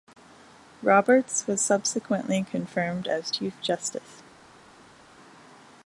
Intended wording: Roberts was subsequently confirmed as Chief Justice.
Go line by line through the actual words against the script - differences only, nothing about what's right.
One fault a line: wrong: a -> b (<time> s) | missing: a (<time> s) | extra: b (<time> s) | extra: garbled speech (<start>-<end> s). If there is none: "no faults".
no faults